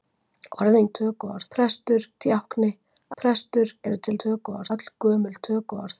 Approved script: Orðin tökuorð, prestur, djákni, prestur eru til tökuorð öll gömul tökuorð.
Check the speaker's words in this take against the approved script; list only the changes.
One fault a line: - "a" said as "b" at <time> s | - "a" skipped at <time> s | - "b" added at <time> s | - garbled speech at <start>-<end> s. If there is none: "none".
none